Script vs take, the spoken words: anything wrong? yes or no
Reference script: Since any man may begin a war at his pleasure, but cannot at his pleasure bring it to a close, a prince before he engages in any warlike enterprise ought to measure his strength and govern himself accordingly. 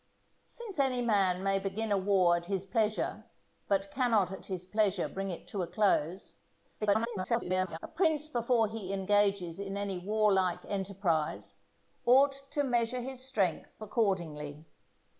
yes